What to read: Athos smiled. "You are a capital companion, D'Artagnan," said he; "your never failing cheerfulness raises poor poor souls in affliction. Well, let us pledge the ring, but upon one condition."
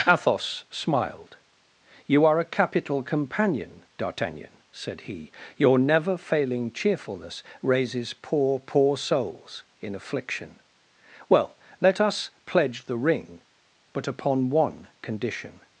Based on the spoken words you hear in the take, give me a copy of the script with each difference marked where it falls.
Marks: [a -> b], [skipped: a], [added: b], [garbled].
Athos smiled. "You are a capital companion, D'Artagnan," said he; "your never failing cheerfulness raises poor poor souls in affliction. Well, let us pledge the ring, but upon one condition."